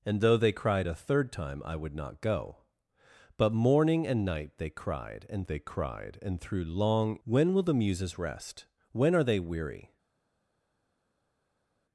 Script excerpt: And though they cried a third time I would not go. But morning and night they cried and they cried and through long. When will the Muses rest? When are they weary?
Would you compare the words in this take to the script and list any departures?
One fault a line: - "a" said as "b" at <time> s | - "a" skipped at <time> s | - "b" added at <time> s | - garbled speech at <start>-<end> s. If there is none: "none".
none